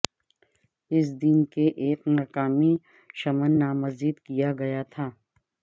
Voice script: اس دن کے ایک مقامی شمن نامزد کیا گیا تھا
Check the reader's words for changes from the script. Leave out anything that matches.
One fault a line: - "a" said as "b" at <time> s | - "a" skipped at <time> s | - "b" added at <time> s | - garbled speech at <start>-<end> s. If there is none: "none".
none